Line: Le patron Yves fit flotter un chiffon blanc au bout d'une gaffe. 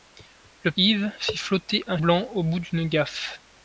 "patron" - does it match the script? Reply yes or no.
no